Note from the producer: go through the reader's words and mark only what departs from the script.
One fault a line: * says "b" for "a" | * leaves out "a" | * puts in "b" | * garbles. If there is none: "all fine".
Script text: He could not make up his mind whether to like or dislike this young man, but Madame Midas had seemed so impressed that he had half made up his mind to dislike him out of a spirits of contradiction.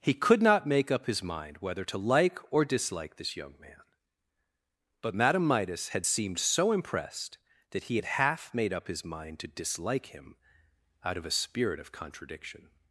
* says "spirit" for "spirits"